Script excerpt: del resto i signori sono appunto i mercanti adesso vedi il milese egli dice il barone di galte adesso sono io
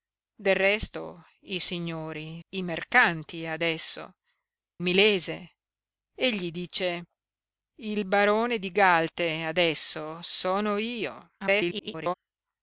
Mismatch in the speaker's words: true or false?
true